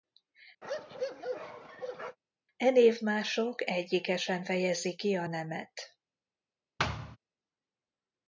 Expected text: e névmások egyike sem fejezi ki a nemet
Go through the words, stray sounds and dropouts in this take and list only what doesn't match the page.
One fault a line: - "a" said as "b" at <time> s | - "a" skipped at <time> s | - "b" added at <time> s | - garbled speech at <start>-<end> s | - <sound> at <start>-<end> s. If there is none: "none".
- bark at 0.6-2.2 s
- thud at 6.8-7.2 s